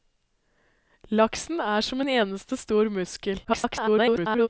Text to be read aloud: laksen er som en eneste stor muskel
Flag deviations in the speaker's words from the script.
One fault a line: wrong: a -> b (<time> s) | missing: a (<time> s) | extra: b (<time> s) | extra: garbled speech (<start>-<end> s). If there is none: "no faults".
extra: garbled speech (3.4-4.5 s)